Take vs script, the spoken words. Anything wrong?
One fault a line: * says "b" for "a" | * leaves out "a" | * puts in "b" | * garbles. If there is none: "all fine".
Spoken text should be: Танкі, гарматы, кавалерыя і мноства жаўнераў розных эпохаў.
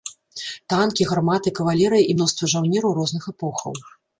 all fine